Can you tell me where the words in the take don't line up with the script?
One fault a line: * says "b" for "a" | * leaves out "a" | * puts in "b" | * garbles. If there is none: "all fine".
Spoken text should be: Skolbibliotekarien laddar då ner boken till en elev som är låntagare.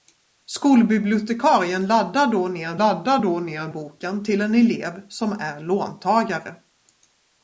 * puts in "laddar då ner"